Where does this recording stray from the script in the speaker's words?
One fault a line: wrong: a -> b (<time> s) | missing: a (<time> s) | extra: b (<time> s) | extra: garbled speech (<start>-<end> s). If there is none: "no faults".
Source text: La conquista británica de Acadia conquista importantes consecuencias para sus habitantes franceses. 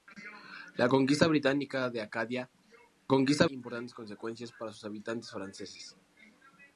no faults